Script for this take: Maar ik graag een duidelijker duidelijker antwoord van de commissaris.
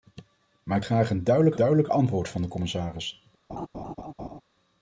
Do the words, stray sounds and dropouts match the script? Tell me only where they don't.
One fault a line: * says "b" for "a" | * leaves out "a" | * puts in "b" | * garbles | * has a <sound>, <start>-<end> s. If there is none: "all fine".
* has a laugh, 3.5-4.4 s